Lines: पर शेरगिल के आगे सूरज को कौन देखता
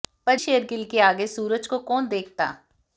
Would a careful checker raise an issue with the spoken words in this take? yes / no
no